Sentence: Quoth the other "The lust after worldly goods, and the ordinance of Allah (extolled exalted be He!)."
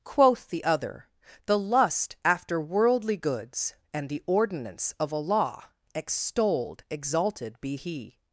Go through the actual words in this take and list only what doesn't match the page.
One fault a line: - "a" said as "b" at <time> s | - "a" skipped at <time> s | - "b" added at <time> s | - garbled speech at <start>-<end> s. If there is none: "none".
none